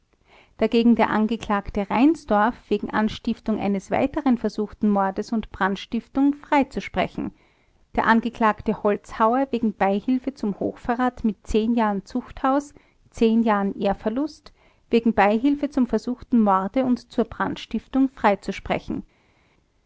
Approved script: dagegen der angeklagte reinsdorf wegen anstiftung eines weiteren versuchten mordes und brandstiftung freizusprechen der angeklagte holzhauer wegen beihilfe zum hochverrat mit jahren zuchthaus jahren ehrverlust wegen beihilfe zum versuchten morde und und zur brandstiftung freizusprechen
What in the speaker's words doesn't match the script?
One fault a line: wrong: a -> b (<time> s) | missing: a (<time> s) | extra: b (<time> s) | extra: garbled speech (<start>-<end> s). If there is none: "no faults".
missing: und (17.1 s)